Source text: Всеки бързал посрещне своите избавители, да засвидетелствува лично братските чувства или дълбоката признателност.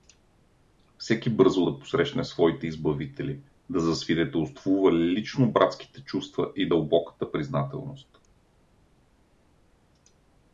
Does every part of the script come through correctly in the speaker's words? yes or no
no